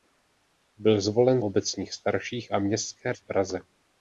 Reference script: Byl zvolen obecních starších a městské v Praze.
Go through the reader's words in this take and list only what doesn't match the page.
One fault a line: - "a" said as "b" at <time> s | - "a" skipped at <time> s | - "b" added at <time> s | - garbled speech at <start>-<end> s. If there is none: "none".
none